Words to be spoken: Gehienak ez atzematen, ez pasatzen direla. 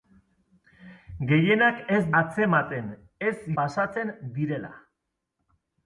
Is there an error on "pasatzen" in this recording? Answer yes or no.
no